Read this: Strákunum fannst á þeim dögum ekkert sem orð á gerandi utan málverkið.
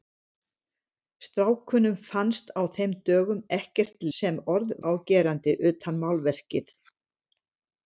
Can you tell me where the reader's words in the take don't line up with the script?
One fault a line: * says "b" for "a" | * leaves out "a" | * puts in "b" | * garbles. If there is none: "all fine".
all fine